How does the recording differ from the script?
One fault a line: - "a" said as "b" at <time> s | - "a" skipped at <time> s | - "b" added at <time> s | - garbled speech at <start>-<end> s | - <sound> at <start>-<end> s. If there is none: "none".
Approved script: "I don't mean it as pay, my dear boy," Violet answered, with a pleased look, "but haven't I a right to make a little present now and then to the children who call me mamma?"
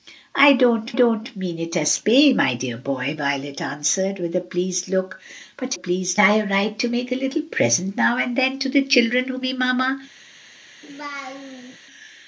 - "don't" added at 0.9 s
- "haven't" said as "pleased" at 5.7 s
- "call" skipped at 9.4 s
- laugh at 10.8-11.8 s